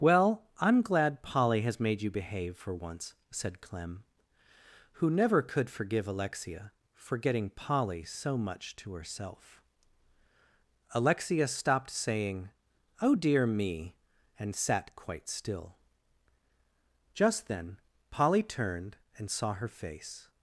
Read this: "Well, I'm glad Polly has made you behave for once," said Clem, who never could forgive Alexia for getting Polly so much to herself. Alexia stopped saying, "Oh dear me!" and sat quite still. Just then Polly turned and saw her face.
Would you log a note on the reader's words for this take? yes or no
no